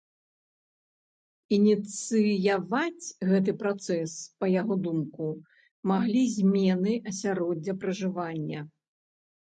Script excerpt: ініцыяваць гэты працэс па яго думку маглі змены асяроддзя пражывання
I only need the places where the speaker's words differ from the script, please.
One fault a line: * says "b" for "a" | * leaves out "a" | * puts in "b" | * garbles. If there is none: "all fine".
all fine